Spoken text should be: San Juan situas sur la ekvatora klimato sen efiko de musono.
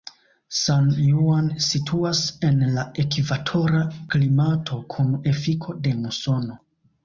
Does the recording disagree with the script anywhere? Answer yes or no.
yes